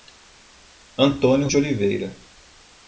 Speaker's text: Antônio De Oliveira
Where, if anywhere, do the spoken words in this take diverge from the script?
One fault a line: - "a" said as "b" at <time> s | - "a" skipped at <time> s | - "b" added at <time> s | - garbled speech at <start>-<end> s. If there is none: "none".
none